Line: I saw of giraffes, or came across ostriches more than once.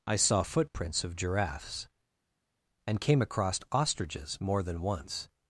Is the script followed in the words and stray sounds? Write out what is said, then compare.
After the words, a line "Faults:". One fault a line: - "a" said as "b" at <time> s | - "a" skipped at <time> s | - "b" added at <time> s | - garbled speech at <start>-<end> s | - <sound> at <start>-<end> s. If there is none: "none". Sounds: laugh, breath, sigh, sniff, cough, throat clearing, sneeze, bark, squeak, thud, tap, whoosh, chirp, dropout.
I saw footprints of giraffes, and came across ostriches more than once.
Faults:
- "footprints" added at 0.4 s
- "or" said as "and" at 2.9 s